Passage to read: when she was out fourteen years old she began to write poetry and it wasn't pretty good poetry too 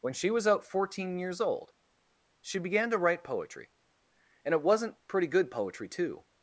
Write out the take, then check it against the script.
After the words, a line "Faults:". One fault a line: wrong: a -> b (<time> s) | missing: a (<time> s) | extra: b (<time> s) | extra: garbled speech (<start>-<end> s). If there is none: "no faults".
when she was out fourteen years old she began to write poetry and it wasn't pretty good poetry too
Faults:
no faults